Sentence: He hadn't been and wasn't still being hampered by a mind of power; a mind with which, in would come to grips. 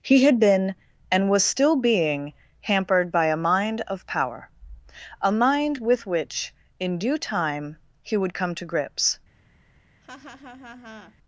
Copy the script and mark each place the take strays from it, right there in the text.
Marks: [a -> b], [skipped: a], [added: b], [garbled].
He [hadn't -> had] been and [wasn't -> was] still being hampered by a mind of power; a mind with which, in [added: due time he] would come to grips.